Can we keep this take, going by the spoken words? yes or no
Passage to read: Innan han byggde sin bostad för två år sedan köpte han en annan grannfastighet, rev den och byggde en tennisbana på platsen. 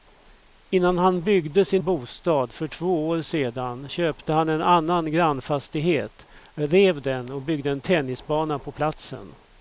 yes